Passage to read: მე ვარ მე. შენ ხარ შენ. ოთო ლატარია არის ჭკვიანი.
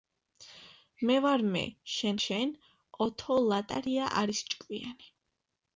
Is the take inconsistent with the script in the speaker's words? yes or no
yes